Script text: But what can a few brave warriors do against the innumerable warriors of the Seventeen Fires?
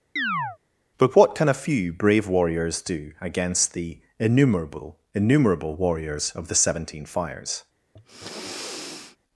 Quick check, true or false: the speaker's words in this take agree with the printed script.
false